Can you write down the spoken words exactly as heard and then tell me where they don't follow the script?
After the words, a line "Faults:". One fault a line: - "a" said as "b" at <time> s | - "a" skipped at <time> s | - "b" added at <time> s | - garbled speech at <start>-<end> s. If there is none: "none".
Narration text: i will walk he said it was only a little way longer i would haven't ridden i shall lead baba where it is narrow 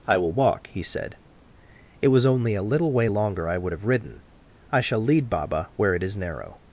i will walk he said it was only a little way longer i would have ridden i shall lead baba where it is narrow
Faults:
- "haven't" said as "have" at 3.7 s